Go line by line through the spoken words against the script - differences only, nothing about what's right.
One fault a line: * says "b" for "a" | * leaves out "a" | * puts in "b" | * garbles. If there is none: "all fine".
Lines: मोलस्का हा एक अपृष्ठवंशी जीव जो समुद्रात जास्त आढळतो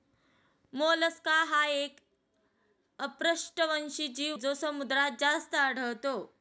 all fine